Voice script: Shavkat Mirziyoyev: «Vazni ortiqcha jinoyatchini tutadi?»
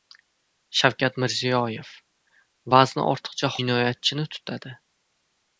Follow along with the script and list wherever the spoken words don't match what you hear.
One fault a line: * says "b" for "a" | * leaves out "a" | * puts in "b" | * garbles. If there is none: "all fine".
all fine